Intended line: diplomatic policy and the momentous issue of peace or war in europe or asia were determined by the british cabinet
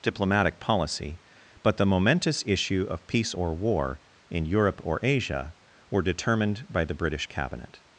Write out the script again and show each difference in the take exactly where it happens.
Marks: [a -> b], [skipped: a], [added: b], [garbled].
diplomatic policy [and -> but] the momentous issue of peace or war in europe or asia were determined by the british cabinet